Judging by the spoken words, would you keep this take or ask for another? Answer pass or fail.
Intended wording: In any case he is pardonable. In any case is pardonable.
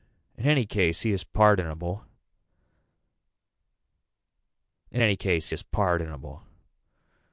pass